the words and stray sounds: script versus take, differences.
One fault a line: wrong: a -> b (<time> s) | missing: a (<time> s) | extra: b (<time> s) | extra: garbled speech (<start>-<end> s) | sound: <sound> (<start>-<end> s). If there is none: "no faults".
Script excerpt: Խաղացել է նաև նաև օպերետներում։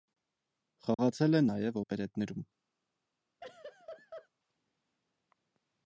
sound: dropout (0.9-1.0 s)
missing: նաև (1.8 s)
sound: laugh (3.4-4.3 s)